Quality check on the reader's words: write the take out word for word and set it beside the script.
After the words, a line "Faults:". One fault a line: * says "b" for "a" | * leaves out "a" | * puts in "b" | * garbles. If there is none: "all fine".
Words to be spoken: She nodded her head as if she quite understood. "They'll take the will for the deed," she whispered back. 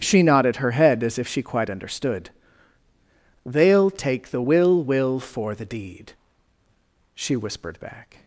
She nodded her head as if she quite understood. "They'll take the will will for the deed," she whispered back.
Faults:
* puts in "will"